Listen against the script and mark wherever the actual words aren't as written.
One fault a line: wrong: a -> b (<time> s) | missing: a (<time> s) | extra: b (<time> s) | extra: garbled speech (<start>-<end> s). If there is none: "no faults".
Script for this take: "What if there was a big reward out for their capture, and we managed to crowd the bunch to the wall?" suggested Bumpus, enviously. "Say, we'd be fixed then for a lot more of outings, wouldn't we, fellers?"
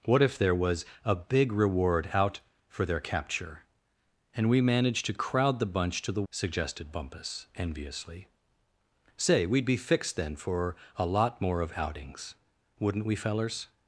missing: wall (6.2 s)